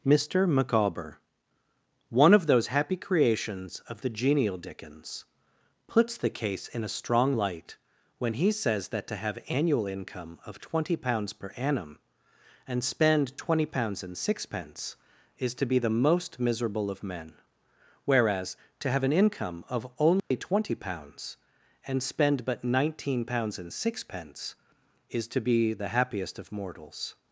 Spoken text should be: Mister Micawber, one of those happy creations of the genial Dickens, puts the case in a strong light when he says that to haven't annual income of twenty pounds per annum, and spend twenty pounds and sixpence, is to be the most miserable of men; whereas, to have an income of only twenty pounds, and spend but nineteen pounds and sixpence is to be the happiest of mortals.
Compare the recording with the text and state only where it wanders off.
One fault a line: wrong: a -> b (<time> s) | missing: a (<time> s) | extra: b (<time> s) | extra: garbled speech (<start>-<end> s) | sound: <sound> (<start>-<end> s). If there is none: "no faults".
wrong: haven't -> have (9.2 s)
sound: dropout (20.2-20.3 s)